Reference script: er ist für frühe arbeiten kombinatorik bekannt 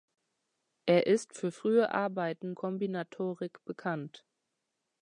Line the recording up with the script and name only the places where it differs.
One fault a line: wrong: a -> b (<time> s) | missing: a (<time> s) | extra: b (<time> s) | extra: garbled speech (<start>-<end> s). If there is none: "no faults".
no faults